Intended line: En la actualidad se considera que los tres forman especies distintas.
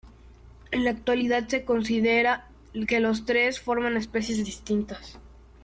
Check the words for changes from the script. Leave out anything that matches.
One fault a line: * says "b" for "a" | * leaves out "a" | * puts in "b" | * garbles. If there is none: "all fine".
all fine